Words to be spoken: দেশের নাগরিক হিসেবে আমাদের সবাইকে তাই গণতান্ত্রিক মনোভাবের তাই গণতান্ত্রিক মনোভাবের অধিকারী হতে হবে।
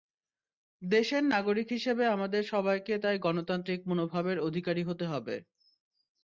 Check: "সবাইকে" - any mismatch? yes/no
no